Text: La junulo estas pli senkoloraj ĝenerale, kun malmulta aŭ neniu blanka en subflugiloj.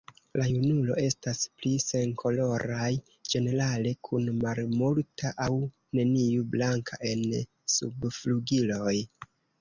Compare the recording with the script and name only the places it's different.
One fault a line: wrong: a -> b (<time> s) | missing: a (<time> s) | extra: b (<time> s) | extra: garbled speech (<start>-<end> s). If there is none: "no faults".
no faults